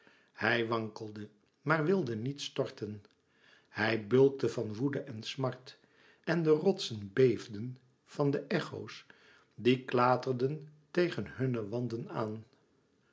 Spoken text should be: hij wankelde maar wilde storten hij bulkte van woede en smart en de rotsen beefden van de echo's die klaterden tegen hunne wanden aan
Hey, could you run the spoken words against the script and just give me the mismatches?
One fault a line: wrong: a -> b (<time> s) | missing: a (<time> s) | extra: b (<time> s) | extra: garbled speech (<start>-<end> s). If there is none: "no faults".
extra: niet (2.1 s)